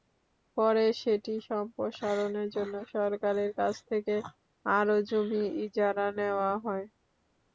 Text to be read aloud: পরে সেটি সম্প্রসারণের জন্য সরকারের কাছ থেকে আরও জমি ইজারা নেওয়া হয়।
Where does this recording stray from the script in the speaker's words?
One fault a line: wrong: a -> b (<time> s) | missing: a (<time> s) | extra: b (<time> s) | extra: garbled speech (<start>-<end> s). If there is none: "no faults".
no faults